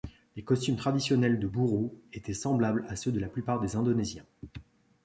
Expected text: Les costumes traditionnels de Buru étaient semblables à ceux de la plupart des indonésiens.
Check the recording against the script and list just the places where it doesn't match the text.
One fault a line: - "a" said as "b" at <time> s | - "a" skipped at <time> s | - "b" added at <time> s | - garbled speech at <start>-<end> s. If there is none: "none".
none